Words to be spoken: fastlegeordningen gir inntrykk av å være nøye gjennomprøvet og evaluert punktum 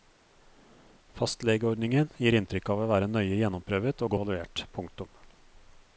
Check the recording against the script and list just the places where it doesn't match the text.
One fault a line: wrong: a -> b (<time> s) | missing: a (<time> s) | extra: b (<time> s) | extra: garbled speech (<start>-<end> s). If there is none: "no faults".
no faults